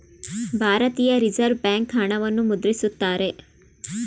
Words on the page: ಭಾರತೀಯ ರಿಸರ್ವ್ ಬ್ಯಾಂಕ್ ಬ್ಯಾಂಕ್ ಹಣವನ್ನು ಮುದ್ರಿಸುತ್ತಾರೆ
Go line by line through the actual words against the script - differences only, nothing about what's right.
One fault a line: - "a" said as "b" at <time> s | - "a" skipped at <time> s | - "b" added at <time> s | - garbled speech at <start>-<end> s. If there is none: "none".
- "ಬ್ಯಾಂಕ್" skipped at 1.9 s